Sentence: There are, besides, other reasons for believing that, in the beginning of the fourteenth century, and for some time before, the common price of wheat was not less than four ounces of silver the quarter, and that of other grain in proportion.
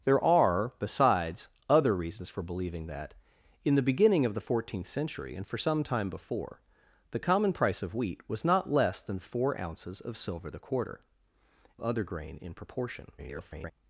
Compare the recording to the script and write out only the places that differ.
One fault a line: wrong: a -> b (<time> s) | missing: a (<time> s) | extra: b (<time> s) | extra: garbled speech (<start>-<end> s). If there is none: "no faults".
missing: and that of (11.0 s)
extra: garbled speech (13.2-13.7 s)